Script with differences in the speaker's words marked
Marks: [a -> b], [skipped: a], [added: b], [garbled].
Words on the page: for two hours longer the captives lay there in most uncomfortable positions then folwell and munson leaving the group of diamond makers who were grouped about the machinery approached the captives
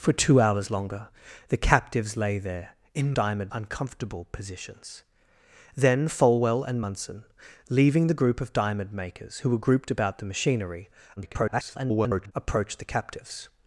for two hours longer the captives lay there in [most -> diamond] uncomfortable positions then folwell and munson leaving the group of diamond makers who were grouped about the machinery [garbled] approached the captives